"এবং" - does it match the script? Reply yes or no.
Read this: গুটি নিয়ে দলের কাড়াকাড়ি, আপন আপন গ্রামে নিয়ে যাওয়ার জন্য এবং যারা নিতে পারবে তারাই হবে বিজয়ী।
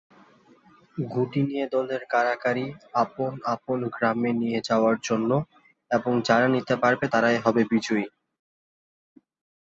yes